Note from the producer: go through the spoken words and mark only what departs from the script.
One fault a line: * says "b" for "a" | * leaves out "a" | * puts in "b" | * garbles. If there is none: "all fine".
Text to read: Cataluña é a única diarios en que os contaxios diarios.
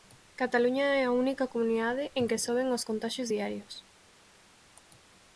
* says "comunidade" for "diarios"
* puts in "soben"